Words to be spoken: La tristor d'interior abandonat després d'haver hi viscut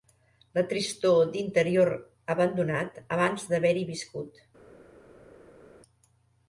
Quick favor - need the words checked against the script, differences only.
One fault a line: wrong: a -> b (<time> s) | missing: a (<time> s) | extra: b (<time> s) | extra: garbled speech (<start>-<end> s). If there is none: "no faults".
wrong: després -> abans (3.2 s)